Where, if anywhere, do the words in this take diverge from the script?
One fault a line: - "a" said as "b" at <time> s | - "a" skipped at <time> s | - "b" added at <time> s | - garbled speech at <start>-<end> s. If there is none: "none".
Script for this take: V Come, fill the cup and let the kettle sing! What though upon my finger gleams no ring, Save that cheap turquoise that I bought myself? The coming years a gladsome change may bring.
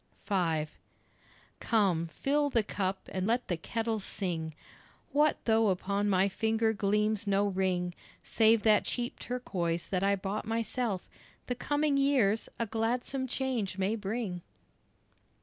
none